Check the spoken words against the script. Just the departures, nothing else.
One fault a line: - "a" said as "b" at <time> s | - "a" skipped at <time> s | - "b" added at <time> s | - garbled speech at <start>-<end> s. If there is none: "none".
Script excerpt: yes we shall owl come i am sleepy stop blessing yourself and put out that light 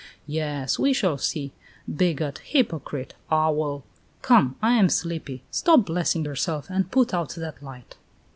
- "see bigot hypocrite" added at 1.2 s